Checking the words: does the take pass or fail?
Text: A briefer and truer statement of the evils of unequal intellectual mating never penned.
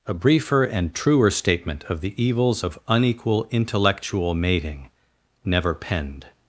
pass